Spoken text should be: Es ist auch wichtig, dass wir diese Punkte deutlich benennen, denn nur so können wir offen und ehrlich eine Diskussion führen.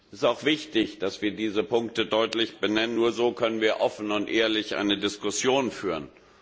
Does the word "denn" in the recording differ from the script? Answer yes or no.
yes